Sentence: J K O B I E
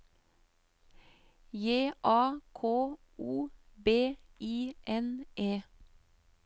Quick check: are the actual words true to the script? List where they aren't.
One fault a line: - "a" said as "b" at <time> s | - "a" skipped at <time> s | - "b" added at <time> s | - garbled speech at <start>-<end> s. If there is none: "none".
- "A" added at 2.0 s
- "N" added at 4.9 s